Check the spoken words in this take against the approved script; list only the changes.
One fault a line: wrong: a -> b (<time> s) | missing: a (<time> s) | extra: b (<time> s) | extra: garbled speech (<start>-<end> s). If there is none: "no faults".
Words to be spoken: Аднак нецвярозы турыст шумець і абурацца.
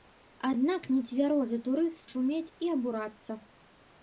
no faults